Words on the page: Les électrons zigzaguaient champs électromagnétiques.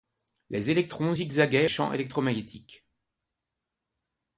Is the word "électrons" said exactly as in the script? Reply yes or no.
yes